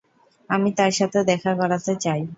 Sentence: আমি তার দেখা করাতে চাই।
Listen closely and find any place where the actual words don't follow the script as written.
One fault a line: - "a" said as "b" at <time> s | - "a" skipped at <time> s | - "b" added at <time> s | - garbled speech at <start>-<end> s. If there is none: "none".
- "সাথে" added at 0.9 s